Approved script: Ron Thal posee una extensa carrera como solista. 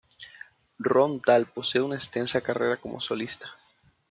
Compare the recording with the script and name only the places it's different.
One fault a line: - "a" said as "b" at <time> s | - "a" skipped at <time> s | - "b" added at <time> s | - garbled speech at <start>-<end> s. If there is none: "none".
none